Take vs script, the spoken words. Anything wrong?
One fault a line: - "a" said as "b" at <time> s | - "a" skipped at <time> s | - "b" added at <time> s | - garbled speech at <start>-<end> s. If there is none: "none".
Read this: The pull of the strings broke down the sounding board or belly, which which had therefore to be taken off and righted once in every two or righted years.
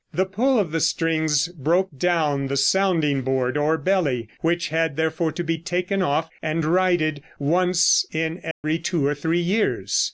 - "which" skipped at 4.7 s
- "righted" said as "three" at 9.1 s